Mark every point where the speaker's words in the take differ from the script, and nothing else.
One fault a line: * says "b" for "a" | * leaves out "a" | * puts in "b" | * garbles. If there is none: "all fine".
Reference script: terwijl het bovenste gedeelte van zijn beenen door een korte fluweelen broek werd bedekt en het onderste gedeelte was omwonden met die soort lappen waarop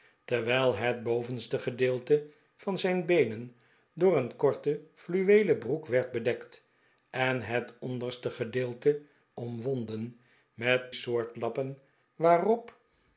* leaves out "was"
* leaves out "die"